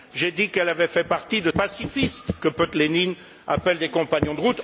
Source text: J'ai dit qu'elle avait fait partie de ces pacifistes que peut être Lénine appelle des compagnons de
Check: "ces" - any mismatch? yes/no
yes